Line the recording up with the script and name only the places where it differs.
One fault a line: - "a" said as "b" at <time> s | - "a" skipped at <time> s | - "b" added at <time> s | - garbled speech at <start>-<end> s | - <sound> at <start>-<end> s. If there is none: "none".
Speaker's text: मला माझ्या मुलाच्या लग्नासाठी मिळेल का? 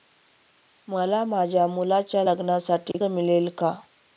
- dropout at 2.9-2.9 s